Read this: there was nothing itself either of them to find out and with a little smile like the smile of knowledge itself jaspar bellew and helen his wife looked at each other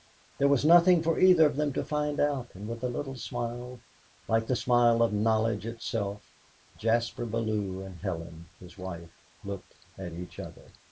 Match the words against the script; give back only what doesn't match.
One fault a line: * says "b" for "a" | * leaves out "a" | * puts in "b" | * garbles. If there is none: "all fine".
* says "for" for "itself"